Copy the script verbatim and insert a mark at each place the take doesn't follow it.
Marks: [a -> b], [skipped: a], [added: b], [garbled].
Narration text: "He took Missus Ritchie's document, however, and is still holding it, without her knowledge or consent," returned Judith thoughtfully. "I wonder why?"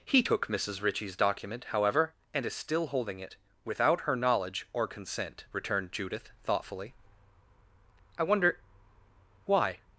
"He took Missus Ritchie's document, however, and is still holding it, without her knowledge or consent," returned Judith thoughtfully. "I wonder why?"